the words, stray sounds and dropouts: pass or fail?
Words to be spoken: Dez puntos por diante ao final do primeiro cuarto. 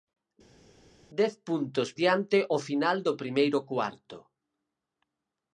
fail